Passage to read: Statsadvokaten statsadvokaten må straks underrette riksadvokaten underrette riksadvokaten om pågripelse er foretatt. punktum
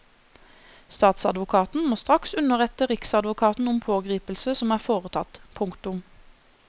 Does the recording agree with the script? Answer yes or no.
no